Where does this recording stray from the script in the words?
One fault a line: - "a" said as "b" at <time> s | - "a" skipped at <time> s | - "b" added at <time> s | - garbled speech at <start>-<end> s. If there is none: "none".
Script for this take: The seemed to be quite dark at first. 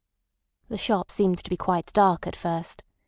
- "shop" added at 0.8 s